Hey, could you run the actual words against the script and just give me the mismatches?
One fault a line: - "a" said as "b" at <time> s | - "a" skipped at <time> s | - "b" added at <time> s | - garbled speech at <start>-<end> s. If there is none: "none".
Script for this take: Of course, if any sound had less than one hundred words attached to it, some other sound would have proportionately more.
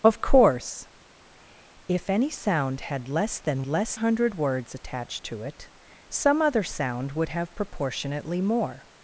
- "one" said as "less" at 3.6 s